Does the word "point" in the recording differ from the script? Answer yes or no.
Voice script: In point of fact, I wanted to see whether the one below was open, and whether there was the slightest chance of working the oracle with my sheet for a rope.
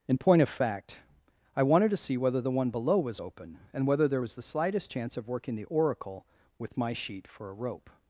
no